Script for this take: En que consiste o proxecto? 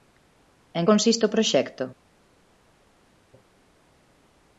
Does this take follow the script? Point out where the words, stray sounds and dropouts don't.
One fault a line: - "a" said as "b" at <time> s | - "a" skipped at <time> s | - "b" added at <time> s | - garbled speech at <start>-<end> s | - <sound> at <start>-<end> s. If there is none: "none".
- "que" skipped at 0.8 s